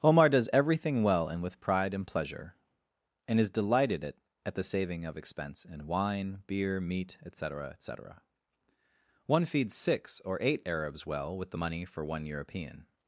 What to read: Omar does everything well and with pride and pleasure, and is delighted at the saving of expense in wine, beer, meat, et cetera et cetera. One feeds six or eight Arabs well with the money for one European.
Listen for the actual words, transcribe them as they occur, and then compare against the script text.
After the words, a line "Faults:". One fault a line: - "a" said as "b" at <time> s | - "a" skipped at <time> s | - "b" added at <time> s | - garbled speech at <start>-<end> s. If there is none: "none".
Omar does everything well and with pride and pleasure, and is delighted at at the saving of expense in wine, beer, meat, et cetera et cetera. One feeds six or eight Arabs well with the money for one European.
Faults:
- "at" added at 4.4 s